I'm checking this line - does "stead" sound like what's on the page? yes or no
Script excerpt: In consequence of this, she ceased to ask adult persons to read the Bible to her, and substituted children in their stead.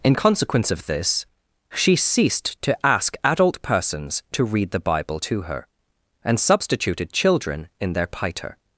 no